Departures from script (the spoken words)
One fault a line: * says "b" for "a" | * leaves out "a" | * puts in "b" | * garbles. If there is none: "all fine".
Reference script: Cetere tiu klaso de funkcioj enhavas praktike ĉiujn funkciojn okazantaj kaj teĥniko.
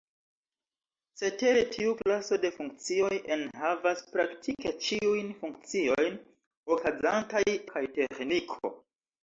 all fine